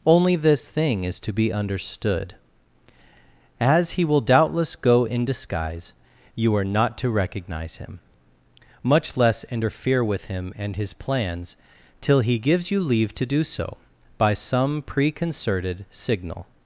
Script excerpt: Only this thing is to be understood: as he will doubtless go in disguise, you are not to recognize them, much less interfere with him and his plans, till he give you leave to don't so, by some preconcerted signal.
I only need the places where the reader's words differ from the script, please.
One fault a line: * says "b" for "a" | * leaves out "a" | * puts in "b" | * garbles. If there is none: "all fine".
* says "him" for "them"
* says "gives" for "give"
* says "do" for "don't"